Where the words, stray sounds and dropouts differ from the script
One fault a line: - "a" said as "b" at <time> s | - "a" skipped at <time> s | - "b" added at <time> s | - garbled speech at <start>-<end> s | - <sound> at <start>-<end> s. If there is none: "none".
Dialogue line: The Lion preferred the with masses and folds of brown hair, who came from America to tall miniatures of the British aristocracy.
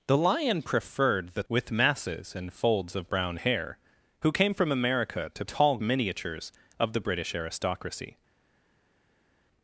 none